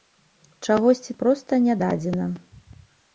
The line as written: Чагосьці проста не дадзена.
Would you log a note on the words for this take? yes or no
no